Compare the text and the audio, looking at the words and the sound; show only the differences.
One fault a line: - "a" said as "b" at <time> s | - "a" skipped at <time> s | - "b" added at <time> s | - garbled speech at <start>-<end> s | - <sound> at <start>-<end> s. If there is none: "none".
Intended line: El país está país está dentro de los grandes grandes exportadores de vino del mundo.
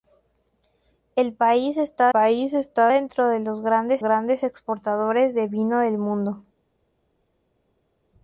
none